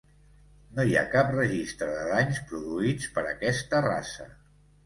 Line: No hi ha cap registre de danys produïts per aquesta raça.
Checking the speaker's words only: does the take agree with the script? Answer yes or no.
yes